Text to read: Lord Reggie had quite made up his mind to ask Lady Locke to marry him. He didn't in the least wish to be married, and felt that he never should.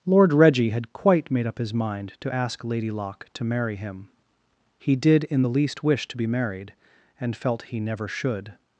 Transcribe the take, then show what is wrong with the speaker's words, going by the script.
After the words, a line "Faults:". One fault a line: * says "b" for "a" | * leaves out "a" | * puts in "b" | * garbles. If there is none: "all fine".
Lord Reggie had quite made up his mind to ask Lady Locke to marry him. He did in the least wish to be married, and felt he never should.
Faults:
* says "did" for "didn't"
* leaves out "that"